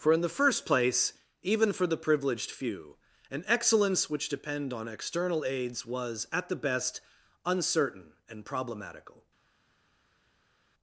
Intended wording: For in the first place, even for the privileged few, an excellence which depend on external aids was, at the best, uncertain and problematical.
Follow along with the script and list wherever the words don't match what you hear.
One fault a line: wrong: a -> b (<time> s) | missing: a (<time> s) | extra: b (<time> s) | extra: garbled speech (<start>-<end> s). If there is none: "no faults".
no faults